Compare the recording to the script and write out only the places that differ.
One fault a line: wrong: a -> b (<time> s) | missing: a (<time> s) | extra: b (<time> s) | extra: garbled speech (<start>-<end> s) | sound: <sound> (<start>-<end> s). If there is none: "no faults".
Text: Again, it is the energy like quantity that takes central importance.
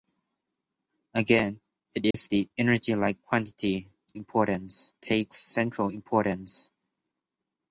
sound: dropout (2.1-2.1 s)
wrong: that -> importance (4.1 s)